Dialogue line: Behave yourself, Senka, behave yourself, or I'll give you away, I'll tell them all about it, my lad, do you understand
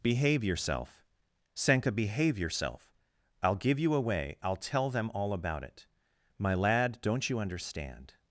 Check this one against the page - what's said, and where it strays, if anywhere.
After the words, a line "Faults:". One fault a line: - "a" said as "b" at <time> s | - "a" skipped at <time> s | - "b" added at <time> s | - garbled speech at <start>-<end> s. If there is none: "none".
Behave yourself, Senka, behave yourself, I'll give you away, I'll tell them all about it, my lad, don't you understand
Faults:
- "or" skipped at 2.9 s
- "do" said as "don't" at 7.0 s